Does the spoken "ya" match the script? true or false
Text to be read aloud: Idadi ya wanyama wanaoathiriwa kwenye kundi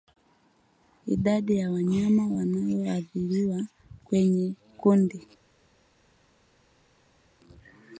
true